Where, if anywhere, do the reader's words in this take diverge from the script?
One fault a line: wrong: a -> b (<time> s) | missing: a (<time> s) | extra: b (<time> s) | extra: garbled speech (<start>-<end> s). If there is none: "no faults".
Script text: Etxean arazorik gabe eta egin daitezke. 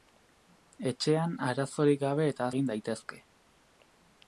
no faults